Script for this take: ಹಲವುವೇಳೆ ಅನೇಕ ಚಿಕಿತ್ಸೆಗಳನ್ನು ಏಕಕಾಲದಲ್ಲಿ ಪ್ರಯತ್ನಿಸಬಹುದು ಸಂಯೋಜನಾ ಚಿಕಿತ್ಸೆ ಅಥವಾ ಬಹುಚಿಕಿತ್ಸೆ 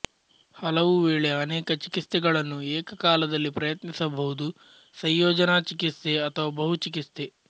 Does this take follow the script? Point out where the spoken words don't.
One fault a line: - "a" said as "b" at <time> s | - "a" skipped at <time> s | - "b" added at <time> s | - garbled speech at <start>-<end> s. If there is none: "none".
none